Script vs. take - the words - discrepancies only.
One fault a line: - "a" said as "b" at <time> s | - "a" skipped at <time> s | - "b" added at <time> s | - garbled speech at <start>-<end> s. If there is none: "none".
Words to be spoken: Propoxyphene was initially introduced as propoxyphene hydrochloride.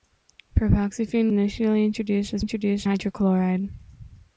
- "was" skipped at 1.3 s
- "propoxyphene" said as "introduced" at 2.4 s